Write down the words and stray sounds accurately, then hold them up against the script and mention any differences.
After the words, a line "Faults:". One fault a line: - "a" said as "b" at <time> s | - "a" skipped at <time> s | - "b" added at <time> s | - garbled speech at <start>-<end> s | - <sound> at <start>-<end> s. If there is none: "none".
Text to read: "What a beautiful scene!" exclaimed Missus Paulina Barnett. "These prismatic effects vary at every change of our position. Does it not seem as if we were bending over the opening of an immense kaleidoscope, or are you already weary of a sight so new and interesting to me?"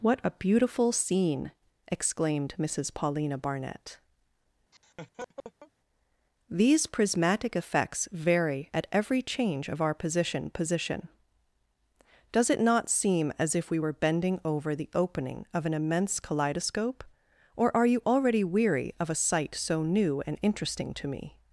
"What a beautiful scene!" exclaimed Missus Paulina Barnett. "These prismatic effects vary at every change of our position position. Does it not seem as if we were bending over the opening of an immense kaleidoscope, or are you already weary of a sight so new and interesting to me?"
Faults:
- laugh at 4.7-5.7 s
- "position" added at 10.5 s